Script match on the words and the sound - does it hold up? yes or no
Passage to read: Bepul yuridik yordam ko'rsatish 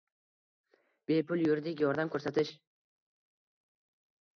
yes